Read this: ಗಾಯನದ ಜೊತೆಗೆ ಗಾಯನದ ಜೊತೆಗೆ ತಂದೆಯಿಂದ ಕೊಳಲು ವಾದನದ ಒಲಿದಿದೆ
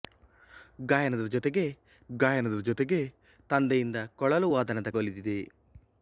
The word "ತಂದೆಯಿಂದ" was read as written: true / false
true